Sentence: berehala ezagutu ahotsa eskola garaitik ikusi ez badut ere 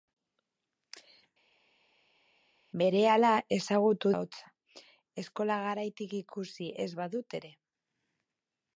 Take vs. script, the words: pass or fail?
pass